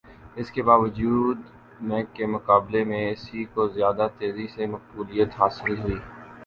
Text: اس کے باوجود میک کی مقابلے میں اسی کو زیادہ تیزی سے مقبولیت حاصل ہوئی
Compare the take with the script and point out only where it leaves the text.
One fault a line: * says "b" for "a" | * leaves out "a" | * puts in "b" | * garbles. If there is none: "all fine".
* says "کے" for "کی"